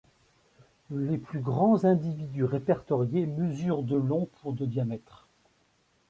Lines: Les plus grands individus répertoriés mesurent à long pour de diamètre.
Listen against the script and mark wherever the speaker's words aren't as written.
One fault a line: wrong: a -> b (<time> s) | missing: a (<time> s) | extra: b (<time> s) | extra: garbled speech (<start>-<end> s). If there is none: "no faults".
wrong: à -> de (3.8 s)